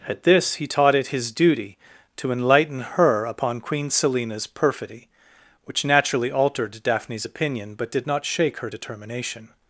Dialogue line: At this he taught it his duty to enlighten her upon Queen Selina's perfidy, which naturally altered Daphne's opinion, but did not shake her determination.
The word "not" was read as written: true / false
true